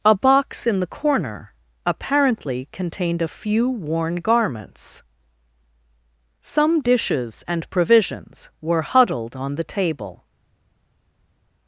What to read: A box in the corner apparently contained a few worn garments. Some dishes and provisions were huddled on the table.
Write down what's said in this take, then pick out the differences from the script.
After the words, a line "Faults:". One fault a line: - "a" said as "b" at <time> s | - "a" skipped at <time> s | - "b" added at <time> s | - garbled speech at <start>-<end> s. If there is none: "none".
A box in the corner apparently contained a few worn garments. Some dishes and provisions were huddled on the table.
Faults:
none